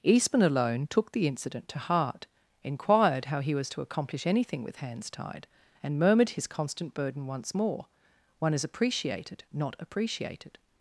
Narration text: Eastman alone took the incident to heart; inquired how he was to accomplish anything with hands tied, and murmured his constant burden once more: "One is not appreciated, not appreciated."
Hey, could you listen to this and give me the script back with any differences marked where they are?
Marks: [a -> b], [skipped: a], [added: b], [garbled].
Eastman alone took the incident to heart; inquired how he was to accomplish anything with hands tied, and murmured his constant burden once more: "One is [skipped: not] appreciated, not appreciated."